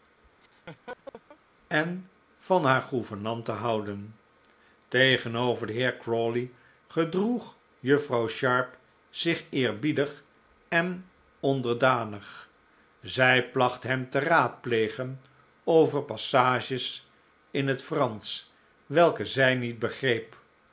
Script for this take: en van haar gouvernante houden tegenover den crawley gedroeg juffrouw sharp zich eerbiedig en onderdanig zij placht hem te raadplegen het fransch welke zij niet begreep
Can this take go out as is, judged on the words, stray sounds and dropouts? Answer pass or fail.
fail